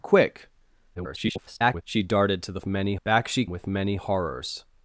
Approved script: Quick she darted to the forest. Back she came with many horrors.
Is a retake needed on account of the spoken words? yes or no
yes